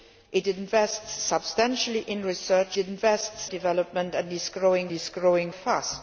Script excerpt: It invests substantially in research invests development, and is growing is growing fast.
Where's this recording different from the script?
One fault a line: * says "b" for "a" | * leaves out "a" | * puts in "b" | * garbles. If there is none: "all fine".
all fine